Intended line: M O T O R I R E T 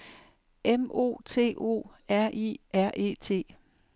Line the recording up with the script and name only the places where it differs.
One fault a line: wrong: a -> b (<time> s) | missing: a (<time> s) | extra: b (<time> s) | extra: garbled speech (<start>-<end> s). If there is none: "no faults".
no faults